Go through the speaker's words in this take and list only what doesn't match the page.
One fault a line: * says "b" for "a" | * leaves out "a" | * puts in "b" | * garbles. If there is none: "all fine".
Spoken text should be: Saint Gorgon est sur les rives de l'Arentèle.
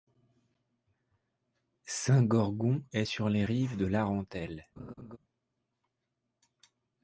all fine